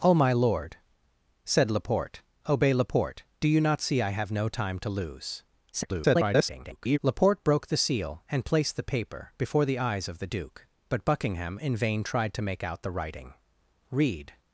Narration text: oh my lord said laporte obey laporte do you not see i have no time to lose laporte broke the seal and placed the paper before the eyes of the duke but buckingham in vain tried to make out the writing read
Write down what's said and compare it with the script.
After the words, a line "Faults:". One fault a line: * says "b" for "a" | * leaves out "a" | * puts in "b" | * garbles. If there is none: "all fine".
oh my lord said laporte obey laporte do you not see i have no time to lose [garbled] laporte broke the seal and placed the paper before the eyes of the duke but buckingham in vain tried to make out the writing read
Faults:
* garbles